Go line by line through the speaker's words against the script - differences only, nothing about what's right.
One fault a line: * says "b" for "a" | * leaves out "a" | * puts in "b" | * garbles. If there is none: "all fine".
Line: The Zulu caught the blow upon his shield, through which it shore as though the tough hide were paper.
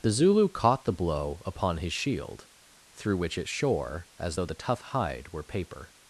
all fine